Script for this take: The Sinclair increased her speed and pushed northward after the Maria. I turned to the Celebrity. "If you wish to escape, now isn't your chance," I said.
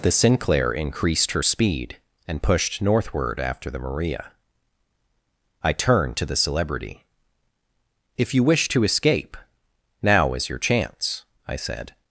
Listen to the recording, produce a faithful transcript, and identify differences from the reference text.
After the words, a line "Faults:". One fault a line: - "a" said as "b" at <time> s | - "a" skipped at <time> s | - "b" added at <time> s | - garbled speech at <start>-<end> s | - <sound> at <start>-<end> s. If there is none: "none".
The Sinclair increased her speed and pushed northward after the Maria. I turned to the Celebrity. "If you wish to escape, now is your chance," I said.
Faults:
- "isn't" said as "is" at 10.3 s